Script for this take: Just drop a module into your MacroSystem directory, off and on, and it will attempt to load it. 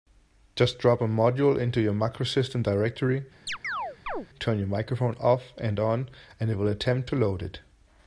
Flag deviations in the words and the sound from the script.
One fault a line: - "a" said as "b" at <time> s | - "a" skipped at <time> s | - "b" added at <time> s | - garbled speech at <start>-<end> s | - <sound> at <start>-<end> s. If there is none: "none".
- chirp at 3.5-4.3 s
- "turn your microphone" added at 4.4 s